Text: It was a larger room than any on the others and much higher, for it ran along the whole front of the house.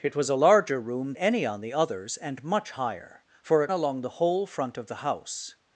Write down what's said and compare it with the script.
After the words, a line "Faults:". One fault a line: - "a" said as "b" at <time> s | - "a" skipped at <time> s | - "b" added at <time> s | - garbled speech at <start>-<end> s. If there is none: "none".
It was a larger room any on the others and much higher, for it along the whole front of the house.
Faults:
- "than" skipped at 1.1 s
- "ran" skipped at 3.7 s